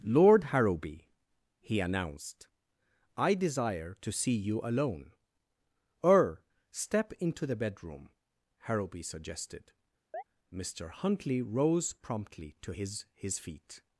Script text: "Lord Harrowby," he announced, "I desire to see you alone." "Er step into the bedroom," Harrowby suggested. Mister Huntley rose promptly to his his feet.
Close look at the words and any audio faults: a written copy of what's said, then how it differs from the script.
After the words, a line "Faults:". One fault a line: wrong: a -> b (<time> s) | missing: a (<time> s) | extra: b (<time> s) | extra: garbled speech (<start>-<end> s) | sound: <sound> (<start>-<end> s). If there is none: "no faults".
"Lord Harrowby," he announced, "I desire to see you alone." "Er step into the bedroom," Harrowby suggested. Mister Huntley rose promptly to his his feet.
Faults:
sound: chirp (10.1-10.2 s)